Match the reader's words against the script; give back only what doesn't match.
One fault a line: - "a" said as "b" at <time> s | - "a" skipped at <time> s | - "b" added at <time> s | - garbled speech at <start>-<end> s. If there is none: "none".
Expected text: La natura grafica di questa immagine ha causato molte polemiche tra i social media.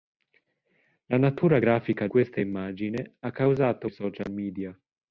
- "di" skipped at 2.1 s
- "molte polemiche tra" skipped at 3.9 s